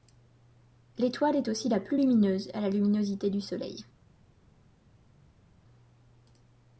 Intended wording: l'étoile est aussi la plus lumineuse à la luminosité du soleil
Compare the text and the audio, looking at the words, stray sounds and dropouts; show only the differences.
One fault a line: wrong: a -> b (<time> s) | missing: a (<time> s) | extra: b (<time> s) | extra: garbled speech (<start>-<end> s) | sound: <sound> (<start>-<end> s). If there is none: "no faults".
no faults